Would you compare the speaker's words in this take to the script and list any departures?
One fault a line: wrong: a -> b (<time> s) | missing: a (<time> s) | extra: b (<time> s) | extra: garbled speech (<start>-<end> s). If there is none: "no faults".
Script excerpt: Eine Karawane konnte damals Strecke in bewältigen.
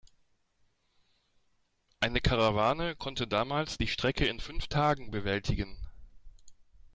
extra: die (3.8 s)
extra: fünf Tagen (4.4 s)